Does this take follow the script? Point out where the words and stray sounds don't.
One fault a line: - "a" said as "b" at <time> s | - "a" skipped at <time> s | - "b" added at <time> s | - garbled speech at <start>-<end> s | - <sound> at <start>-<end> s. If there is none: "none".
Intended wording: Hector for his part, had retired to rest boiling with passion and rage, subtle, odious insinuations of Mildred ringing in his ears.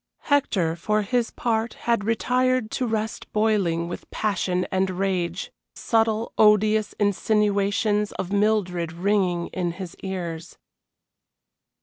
none